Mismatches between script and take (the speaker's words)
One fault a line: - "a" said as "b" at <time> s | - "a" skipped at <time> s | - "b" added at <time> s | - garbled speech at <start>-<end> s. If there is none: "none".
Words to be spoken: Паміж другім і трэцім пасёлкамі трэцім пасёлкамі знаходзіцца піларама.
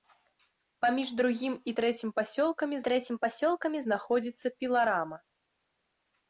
none